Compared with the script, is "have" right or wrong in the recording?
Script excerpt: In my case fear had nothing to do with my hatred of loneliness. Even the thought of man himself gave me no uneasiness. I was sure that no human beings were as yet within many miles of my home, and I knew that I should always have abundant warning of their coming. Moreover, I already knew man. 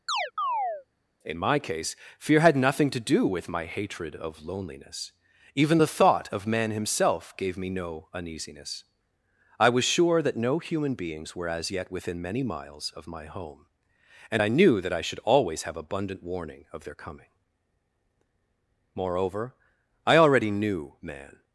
right